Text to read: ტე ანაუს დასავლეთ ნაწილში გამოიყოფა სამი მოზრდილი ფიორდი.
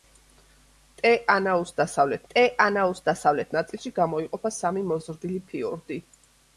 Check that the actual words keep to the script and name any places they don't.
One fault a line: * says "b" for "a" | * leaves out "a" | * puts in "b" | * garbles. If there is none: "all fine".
* puts in "ტე ანაუს დასავლეთ"